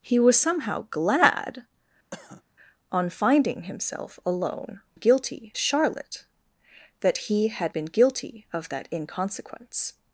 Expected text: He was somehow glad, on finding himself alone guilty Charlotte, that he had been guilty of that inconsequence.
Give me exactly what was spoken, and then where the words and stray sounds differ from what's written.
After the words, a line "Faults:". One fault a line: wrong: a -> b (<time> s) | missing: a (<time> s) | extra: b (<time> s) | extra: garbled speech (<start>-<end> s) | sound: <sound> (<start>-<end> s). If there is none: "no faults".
He was somehow glad, on finding himself alone guilty Charlotte, that he had been guilty of that inconsequence.
Faults:
sound: cough (2.1-2.4 s)